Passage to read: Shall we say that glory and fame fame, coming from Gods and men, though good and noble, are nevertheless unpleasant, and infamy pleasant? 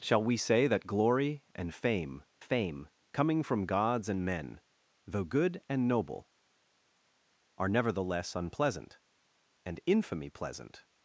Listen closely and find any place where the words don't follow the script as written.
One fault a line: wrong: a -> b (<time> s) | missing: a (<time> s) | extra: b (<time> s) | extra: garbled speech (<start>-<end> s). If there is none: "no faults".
no faults